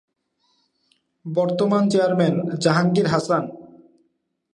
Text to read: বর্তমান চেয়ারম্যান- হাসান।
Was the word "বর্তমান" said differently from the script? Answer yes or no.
no